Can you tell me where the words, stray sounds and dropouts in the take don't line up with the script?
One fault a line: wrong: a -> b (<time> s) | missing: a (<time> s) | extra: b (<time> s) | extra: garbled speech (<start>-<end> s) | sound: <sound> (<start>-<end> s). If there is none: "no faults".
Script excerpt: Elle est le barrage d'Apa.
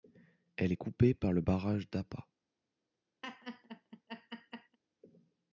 extra: coupée par (0.8 s)
sound: laugh (3.2-4.8 s)